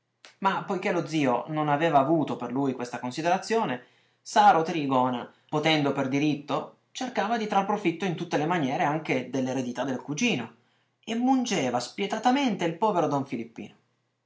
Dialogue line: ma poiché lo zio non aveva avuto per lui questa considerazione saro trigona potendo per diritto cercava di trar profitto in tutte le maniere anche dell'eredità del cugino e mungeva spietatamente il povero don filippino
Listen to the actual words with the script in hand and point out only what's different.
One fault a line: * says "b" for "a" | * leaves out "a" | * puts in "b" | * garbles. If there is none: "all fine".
all fine